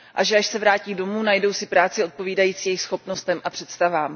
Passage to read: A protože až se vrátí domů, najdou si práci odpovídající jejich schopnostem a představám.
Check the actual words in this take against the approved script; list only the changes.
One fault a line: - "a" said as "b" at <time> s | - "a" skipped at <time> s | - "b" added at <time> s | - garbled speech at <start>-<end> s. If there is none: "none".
- "protože" said as "že" at 0.2 s